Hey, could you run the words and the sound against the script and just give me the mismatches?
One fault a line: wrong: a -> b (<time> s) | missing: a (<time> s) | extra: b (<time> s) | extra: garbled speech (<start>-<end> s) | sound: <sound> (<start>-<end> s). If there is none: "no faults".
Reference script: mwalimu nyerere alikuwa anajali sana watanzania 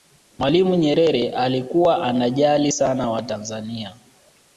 no faults